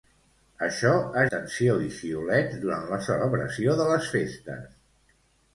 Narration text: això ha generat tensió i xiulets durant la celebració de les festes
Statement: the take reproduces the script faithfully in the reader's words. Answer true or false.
false